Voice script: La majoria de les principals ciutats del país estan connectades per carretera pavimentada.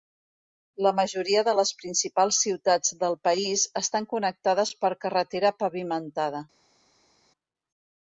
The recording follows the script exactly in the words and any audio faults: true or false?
true